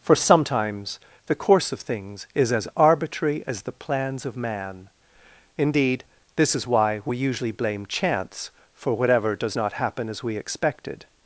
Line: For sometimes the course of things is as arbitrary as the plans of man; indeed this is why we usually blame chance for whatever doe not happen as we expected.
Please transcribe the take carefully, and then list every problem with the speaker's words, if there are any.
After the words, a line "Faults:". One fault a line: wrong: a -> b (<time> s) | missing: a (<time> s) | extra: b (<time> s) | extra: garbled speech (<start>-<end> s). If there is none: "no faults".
For sometimes the course of things is as arbitrary as the plans of man; indeed this is why we usually blame chance for whatever does not happen as we expected.
Faults:
wrong: doe -> does (9.4 s)